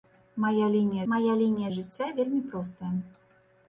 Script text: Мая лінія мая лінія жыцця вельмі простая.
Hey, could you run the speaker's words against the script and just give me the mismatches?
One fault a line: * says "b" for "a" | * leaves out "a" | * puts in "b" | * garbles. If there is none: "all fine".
all fine